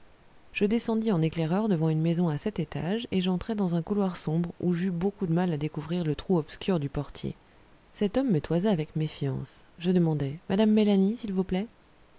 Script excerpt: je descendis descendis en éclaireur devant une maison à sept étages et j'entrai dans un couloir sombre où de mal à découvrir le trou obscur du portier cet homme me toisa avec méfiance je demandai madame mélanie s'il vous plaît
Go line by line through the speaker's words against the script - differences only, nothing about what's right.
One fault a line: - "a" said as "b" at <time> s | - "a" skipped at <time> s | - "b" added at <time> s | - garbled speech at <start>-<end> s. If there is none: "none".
- "descendis" skipped at 1.1 s
- "j'eus beaucoup" added at 4.7 s